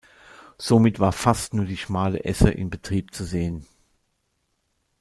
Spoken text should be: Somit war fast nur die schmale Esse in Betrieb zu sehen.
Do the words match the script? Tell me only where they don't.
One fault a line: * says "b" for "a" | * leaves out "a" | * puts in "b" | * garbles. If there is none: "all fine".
all fine